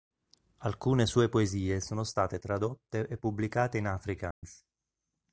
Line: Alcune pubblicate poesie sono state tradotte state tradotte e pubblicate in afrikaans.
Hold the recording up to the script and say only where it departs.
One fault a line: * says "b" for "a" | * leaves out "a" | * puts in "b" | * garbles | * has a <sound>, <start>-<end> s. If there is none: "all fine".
* says "sue" for "pubblicate"
* leaves out "state tradotte"
* has a dropout, 4.3-4.4 s